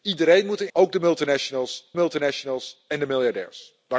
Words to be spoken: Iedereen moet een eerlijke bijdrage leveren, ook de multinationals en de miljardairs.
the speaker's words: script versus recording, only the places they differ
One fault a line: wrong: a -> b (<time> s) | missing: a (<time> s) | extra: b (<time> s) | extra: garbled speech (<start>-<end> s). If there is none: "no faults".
missing: eerlijke bijdrage leveren (0.7 s)
extra: multinationals (1.9 s)